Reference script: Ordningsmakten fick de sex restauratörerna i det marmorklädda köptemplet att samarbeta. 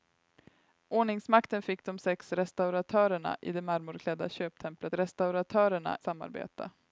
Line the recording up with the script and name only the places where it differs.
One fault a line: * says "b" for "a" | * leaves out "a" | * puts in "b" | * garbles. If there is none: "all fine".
* says "restauratörerna" for "att"